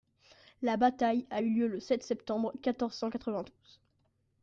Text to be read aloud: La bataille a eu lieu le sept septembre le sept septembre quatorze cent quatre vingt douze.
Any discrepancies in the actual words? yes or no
yes